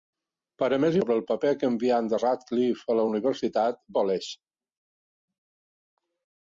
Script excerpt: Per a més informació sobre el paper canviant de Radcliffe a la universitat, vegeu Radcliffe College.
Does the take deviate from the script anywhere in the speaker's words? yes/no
yes